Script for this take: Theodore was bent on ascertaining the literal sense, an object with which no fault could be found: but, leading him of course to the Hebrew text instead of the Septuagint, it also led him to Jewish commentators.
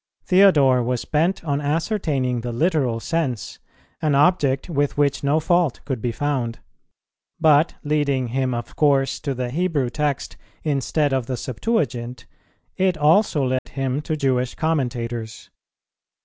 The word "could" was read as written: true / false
true